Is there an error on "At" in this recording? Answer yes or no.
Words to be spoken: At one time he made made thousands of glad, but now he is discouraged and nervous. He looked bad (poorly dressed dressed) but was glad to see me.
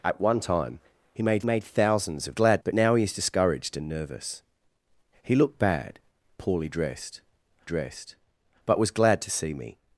no